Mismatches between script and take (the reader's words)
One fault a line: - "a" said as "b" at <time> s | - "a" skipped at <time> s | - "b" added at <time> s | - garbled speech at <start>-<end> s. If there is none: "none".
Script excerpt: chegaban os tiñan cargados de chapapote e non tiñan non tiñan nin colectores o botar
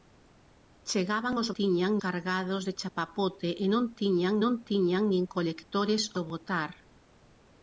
none